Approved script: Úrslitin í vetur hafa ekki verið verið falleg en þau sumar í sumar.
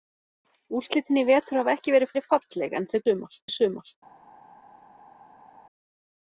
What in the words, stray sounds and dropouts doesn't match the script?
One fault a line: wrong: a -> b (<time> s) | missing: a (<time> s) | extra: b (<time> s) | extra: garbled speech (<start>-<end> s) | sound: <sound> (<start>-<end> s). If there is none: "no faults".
no faults